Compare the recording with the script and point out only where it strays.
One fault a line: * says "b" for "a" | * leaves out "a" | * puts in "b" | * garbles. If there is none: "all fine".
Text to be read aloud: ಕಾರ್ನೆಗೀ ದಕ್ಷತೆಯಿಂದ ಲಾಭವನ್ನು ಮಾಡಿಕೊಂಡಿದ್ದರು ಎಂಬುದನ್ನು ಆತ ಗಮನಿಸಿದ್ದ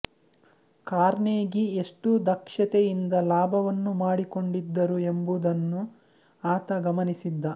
* puts in "ಎಷ್ಟು"